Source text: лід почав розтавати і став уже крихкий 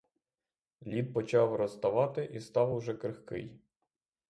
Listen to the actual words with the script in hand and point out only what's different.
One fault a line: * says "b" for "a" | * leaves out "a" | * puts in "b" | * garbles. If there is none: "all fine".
all fine